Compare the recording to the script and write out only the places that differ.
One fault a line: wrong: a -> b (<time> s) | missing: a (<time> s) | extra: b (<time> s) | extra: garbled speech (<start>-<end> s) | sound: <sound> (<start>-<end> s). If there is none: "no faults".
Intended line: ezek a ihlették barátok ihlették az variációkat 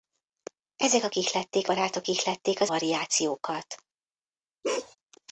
sound: bark (4.6-5.0 s)